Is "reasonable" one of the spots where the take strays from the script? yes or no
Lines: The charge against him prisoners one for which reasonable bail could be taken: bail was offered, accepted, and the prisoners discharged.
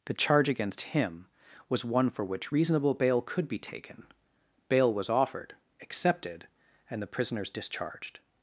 no